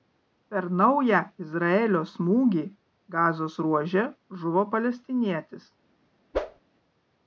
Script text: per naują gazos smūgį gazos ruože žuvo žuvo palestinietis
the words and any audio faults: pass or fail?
fail